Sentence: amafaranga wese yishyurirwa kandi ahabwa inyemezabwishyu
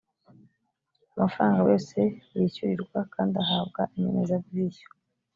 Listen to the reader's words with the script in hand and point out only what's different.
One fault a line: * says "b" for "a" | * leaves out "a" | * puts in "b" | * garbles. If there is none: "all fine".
all fine